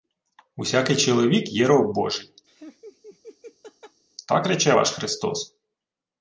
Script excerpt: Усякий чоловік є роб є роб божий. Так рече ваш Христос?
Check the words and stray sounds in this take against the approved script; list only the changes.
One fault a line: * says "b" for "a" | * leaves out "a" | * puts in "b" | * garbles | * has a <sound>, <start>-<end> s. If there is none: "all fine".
* leaves out "є роб"
* has a laugh, 2.5-4.0 s